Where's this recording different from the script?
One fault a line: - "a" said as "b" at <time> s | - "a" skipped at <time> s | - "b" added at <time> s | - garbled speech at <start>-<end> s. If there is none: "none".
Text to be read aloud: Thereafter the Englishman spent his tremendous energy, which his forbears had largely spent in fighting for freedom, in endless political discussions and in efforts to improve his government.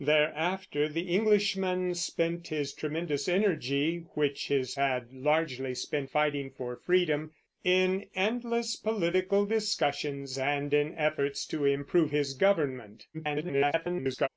- "forbears" skipped at 4.7 s
- "in" skipped at 6.1 s
- garbled speech at 13.1-14.3 s